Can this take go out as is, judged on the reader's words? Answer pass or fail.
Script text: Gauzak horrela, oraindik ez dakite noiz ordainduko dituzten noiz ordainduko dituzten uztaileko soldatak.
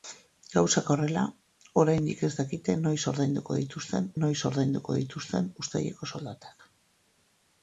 pass